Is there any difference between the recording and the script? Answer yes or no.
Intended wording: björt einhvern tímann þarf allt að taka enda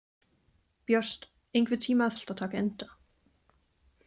yes